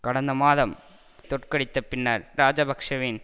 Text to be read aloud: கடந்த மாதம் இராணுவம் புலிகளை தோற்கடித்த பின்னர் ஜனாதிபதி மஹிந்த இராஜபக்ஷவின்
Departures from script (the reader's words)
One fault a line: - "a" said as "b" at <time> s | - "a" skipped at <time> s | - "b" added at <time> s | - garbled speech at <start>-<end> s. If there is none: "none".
- "இராணுவம் புலிகளை" skipped at 0.7 s
- "ஜனாதிபதி மஹிந்த" skipped at 2.2 s